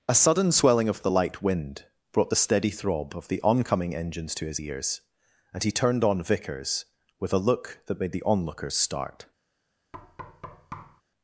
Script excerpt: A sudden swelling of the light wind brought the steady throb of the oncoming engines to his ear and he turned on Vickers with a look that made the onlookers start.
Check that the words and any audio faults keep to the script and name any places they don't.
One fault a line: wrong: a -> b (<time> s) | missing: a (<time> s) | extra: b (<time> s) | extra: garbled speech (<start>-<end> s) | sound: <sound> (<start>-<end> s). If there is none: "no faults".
wrong: ear -> ears (4.6 s)
sound: thud (9.9-11.0 s)